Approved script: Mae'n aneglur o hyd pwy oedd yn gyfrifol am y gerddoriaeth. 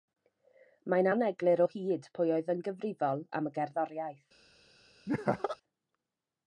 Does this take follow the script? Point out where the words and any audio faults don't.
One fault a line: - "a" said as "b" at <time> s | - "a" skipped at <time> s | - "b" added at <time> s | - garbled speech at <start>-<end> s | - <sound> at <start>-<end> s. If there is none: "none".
- laugh at 5.1-5.6 s